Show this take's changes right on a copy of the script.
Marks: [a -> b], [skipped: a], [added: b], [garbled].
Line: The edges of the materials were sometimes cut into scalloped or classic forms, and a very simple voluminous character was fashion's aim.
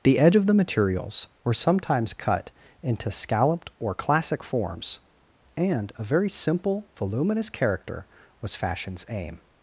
The [edges -> edge] of the materials were sometimes cut into scalloped or classic forms, and a very simple voluminous character was fashion's aim.